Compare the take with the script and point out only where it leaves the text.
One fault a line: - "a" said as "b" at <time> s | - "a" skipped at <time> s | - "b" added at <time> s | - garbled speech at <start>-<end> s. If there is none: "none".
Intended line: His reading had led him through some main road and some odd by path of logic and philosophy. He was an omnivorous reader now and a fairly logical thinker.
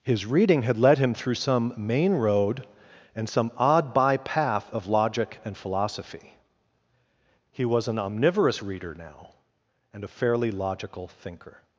none